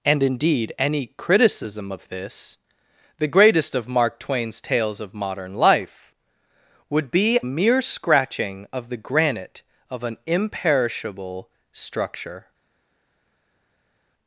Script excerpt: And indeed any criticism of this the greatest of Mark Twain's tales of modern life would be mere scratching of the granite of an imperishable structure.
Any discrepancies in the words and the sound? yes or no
no